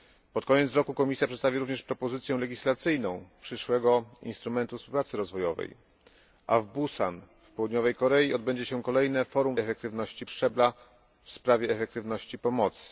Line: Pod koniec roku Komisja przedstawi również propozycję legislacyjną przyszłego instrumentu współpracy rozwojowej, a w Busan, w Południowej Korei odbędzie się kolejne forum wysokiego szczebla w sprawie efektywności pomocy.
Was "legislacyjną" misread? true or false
false